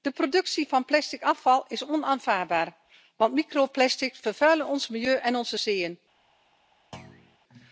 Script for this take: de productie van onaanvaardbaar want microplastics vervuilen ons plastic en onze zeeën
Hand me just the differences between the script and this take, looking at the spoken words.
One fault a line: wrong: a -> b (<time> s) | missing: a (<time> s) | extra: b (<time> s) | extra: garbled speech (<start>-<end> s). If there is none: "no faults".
extra: plastic afval is (0.8 s)
wrong: plastic -> milieu (4.9 s)